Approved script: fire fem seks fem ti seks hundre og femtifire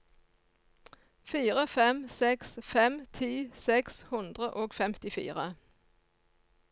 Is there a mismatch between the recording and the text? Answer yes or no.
no